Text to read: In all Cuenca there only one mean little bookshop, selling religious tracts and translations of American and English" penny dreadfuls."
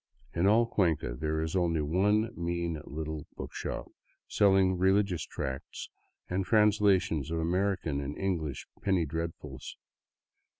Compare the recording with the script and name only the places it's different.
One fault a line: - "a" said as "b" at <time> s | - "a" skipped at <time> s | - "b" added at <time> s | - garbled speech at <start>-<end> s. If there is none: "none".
- "is" added at 1.4 s